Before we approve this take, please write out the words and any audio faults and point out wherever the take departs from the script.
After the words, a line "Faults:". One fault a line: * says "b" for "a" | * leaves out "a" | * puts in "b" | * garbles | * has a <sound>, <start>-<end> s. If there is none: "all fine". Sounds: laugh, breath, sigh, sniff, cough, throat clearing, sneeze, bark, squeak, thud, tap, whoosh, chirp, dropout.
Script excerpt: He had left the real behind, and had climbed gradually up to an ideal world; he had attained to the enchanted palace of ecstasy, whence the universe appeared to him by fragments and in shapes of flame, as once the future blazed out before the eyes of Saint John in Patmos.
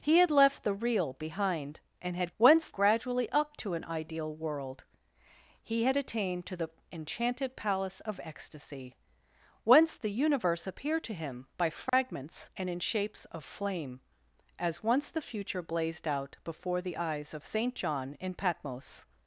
He had left the real behind, and had whence gradually up to an ideal world; he had attained to the enchanted palace of ecstasy, whence the universe appeared to him by fragments and in shapes of flame, as once the future blazed out before the eyes of Saint John in Patmos.
Faults:
* says "whence" for "climbed"
* has a dropout, 11.9-11.9 s